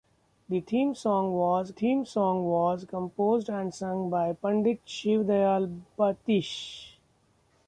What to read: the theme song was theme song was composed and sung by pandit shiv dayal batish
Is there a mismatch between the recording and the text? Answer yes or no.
no